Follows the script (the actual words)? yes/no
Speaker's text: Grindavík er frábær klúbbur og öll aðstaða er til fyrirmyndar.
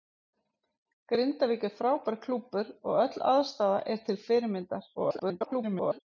no